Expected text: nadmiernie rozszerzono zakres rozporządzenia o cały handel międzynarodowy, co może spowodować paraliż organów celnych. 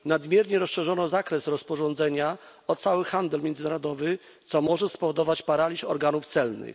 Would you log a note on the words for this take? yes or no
no